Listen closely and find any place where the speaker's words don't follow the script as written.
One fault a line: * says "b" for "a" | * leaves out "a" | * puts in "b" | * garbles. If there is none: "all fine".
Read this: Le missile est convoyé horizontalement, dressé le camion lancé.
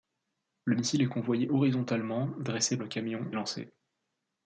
all fine